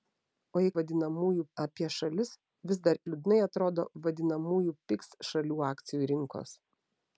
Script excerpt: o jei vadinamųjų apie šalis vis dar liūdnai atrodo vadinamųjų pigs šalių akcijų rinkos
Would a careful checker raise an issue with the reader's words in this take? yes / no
no